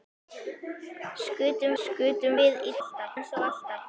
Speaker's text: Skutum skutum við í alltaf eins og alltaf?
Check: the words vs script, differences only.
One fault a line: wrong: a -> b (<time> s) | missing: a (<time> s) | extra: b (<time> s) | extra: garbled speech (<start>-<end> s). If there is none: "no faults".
no faults